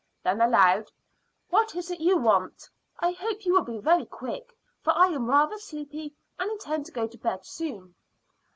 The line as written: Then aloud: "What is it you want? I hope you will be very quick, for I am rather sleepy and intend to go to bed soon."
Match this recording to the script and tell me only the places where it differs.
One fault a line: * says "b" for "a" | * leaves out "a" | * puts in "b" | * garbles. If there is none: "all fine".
all fine